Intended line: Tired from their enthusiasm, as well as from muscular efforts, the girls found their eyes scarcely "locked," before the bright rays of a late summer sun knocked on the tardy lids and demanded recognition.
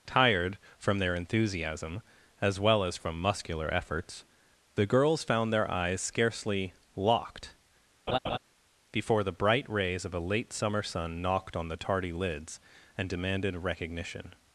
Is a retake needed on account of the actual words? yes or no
no